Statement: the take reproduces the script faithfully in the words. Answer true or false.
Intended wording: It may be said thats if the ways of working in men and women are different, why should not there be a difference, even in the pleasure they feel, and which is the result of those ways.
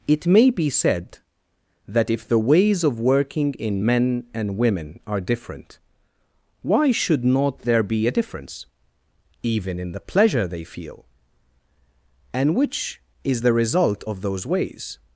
false